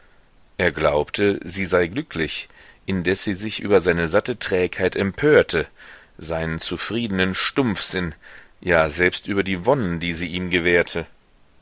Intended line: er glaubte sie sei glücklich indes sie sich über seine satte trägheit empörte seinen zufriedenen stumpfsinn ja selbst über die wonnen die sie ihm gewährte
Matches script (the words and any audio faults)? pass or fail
pass